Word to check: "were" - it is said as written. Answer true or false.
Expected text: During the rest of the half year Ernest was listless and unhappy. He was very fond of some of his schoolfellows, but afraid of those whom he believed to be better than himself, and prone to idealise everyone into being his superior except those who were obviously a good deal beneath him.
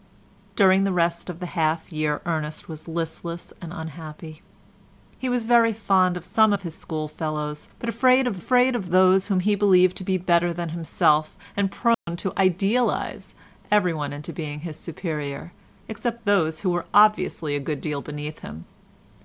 true